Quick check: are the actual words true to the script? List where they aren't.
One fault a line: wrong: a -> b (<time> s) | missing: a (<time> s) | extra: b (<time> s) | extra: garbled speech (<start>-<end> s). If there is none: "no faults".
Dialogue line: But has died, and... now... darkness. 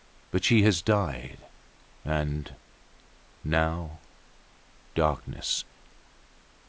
extra: she (0.4 s)